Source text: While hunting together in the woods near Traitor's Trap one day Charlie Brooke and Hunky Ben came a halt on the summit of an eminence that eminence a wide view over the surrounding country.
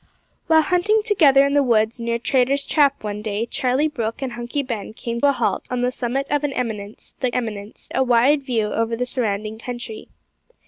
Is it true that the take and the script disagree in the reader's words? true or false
false